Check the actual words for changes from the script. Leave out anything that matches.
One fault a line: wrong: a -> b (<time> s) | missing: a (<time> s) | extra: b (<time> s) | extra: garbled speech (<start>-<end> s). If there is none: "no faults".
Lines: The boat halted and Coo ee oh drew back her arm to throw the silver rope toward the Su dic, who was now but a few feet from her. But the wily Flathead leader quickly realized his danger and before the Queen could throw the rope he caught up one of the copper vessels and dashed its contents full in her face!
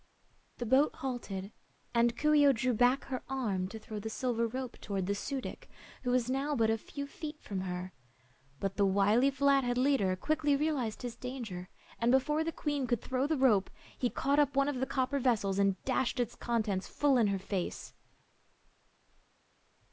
no faults